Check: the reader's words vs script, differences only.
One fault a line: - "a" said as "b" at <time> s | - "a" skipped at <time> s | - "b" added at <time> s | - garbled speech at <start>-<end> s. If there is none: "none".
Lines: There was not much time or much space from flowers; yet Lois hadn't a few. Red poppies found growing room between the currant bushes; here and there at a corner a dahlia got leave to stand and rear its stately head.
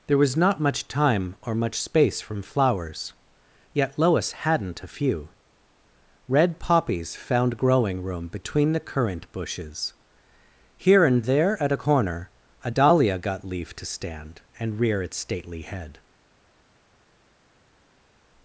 none